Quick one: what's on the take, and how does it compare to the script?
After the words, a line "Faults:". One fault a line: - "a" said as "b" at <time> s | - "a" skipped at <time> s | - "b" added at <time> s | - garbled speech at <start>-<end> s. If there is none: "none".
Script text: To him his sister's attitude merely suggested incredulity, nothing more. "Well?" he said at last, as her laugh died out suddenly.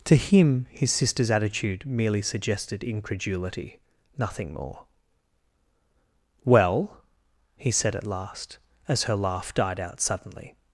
To him his sister's attitude merely suggested incredulity, nothing more. "Well?" he said at last, as her laugh died out suddenly.
Faults:
none